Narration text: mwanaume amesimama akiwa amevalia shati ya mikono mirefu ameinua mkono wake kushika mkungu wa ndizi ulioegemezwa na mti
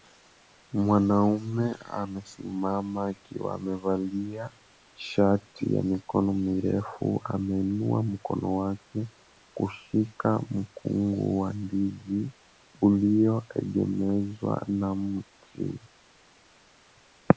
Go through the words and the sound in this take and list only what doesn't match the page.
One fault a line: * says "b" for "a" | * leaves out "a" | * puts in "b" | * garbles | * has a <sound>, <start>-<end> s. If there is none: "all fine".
all fine